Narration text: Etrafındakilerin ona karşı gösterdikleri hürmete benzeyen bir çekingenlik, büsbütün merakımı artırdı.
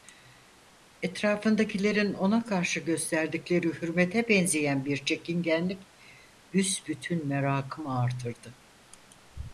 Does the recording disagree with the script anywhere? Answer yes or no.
no